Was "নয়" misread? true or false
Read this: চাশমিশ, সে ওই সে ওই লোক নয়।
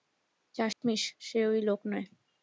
false